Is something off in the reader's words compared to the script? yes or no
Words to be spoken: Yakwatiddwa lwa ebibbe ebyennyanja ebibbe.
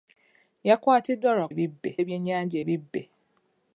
no